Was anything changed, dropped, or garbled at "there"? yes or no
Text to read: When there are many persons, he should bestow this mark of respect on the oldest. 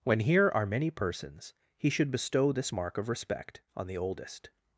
yes